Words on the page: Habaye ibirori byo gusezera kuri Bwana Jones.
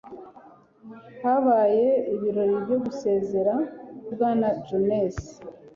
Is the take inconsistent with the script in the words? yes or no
yes